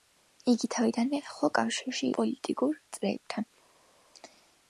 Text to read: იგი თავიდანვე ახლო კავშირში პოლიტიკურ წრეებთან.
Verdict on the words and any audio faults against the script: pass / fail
pass